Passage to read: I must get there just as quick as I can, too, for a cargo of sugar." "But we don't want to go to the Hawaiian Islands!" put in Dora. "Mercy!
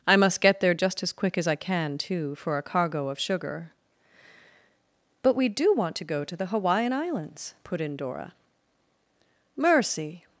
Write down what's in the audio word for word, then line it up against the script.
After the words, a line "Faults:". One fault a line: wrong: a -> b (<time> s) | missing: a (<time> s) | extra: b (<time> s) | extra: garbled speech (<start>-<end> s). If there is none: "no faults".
I must get there just as quick as I can, too, for a cargo of sugar." "But we do want to go to the Hawaiian Islands!" put in Dora. "Mercy!
Faults:
wrong: don't -> do (5.5 s)